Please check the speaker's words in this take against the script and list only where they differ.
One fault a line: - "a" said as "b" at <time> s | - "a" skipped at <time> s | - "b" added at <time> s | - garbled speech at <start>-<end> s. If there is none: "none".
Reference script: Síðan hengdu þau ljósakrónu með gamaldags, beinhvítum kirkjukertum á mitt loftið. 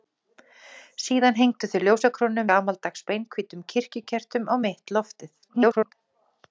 - "með" skipped at 2.5 s
- garbled speech at 5.4-5.9 s